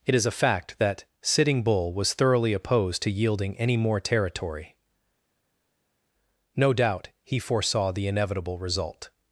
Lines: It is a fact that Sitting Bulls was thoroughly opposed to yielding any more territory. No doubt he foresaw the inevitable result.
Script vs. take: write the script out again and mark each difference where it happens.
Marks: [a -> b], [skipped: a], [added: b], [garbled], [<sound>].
It is a fact that Sitting [Bulls -> Bull] was thoroughly opposed to yielding any more territory. No doubt he foresaw the inevitable result.